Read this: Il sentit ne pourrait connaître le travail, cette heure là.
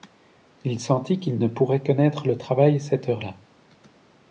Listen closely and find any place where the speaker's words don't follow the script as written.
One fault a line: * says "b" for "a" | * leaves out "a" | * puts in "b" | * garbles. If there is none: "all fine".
* puts in "qu'il"